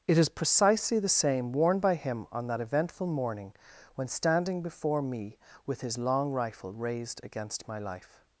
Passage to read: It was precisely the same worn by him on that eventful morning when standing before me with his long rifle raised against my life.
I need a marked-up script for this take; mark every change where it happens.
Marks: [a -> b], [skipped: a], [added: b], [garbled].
It [was -> is] precisely the same worn by him on that eventful morning when standing before me with his long rifle raised against my life.